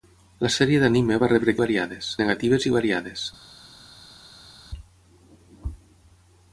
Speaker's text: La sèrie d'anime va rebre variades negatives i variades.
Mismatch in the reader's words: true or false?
false